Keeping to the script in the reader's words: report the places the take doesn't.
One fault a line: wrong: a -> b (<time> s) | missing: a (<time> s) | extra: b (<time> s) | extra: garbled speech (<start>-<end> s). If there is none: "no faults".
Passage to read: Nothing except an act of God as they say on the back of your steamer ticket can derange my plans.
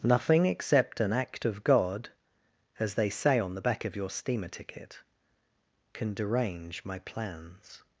no faults